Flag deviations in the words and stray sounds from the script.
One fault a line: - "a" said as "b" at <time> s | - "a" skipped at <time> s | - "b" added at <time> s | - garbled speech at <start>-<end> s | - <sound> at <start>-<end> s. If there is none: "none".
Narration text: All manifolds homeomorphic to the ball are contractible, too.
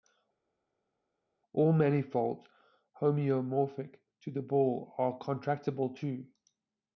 none